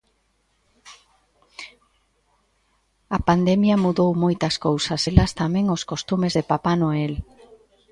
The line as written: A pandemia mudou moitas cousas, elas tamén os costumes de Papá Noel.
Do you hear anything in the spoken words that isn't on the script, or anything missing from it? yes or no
no